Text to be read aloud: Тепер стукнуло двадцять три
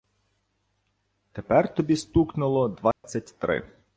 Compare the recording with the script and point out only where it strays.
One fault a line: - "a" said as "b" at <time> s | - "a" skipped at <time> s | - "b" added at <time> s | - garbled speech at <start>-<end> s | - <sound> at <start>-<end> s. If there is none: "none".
- "тобі" added at 1.8 s
- dropout at 2.9-3.0 s